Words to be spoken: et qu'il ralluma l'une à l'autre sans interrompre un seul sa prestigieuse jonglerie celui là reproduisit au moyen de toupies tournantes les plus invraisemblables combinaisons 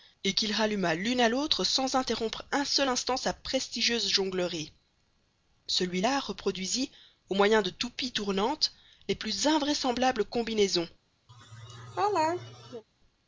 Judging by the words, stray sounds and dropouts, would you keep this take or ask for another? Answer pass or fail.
fail